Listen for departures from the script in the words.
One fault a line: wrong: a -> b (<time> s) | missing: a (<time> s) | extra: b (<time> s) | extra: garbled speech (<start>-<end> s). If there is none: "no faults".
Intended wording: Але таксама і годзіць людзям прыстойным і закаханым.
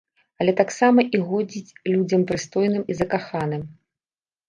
no faults